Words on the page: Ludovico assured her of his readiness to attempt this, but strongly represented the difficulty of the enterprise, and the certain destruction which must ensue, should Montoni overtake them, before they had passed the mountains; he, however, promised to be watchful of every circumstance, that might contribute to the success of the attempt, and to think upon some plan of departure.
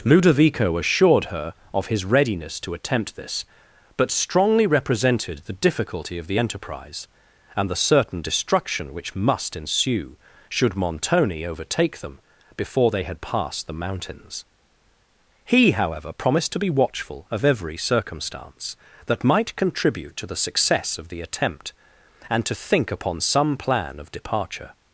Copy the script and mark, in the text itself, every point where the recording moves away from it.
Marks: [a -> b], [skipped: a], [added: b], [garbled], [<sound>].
Ludovico assured her of his readiness to attempt this, but strongly represented the difficulty of the enterprise, and the certain destruction which must ensue, should Montoni overtake them, before they had passed the mountains; he, however, promised to be watchful of every circumstance, that might contribute to the success of the attempt, and to think upon some plan of departure.